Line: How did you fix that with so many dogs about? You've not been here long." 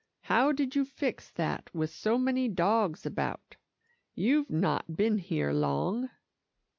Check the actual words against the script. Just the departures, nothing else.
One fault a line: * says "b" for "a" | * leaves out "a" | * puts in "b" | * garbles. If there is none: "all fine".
all fine